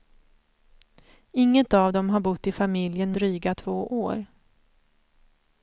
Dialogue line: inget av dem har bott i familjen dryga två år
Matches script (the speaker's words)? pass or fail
pass